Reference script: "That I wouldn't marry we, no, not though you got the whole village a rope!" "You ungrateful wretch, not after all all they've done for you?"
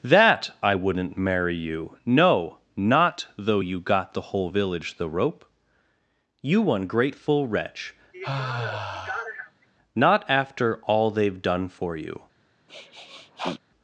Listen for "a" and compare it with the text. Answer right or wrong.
wrong